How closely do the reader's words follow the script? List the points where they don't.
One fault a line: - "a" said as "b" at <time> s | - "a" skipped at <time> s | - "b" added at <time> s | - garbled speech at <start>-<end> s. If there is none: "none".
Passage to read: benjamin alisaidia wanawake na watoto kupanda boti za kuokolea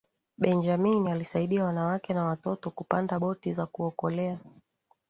none